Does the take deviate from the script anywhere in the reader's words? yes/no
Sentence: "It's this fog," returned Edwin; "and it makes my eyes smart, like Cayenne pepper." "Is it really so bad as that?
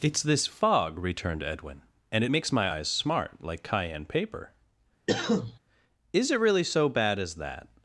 yes